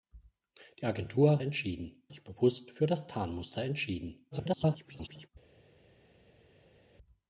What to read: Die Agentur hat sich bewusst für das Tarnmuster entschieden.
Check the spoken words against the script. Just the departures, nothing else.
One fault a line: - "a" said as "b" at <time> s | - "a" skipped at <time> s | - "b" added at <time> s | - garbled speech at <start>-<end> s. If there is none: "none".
- "hat" said as "entschieden" at 1.4 s
- garbled speech at 4.3-5.3 s